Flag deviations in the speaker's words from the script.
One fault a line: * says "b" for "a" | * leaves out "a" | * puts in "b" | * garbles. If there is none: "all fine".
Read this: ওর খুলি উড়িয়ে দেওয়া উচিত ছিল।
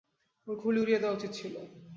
all fine